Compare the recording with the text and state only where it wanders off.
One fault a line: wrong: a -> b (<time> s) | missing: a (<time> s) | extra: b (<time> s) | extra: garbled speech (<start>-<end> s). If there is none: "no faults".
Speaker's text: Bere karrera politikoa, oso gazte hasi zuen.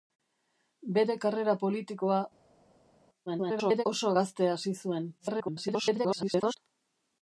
extra: garbled speech (3.3-3.8 s)
extra: garbled speech (5.2-6.6 s)